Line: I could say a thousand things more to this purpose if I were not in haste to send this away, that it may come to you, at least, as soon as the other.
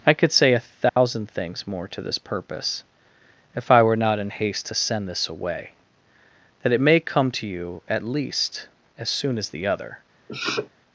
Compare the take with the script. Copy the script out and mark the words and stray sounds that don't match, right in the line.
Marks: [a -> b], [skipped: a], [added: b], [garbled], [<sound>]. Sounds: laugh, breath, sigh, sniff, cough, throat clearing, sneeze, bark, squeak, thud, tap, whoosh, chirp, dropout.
I could say a thousand [dropout] things more to this purpose if I were not in haste to send this away, that it may come to you, at least, as soon as the other. [sniff]